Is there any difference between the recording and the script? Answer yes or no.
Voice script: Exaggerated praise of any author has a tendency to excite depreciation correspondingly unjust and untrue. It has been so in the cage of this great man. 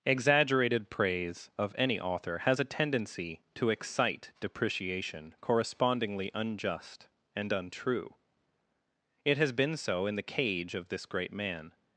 no